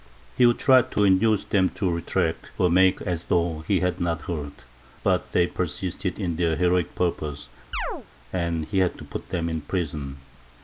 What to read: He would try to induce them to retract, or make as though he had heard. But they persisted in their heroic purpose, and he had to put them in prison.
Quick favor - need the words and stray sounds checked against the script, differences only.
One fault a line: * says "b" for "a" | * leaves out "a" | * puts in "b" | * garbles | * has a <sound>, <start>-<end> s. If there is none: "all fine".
* puts in "not"
* has a chirp, 7.7-8.1 s